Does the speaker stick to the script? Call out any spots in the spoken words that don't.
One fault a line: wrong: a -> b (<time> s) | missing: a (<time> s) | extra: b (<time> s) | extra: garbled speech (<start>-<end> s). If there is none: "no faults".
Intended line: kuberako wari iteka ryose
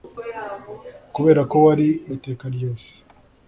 no faults